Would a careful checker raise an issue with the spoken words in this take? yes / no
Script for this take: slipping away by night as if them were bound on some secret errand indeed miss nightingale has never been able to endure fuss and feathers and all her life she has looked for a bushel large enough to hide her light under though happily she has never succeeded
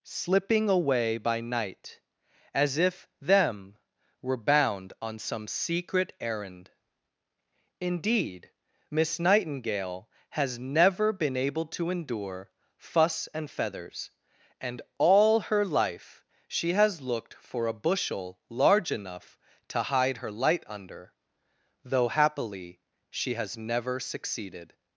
no